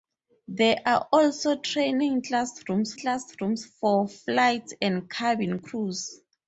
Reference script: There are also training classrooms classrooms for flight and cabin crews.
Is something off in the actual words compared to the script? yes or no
no